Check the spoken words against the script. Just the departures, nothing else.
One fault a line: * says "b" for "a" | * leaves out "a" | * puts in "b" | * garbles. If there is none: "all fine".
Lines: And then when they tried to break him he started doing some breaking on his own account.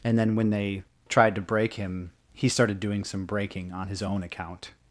all fine